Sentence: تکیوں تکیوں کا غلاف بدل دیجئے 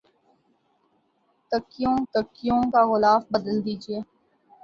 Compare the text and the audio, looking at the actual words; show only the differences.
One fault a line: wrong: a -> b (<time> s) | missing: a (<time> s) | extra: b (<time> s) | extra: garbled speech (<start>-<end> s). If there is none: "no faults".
no faults